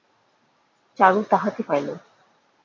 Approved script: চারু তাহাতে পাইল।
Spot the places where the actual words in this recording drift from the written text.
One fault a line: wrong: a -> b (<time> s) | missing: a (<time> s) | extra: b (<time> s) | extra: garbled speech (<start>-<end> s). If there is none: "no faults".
no faults